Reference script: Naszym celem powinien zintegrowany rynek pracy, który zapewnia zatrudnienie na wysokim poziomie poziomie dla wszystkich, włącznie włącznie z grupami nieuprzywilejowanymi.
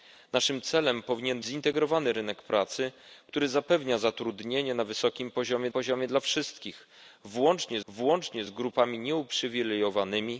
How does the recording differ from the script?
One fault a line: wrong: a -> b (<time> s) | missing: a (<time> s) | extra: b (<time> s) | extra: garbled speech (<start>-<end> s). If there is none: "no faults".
no faults